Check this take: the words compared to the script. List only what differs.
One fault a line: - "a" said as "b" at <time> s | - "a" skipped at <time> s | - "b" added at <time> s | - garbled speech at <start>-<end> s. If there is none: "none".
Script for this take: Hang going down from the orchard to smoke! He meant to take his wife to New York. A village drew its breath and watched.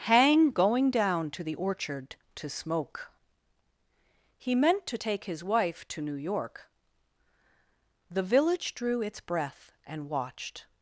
- "from" said as "to" at 1.3 s
- "A" said as "The" at 8.1 s